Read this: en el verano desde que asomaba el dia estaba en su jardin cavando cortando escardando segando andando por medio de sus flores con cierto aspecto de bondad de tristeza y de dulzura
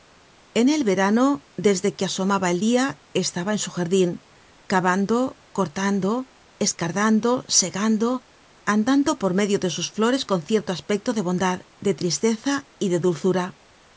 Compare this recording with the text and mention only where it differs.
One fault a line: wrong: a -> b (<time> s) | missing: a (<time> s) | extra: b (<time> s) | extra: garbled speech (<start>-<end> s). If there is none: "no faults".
no faults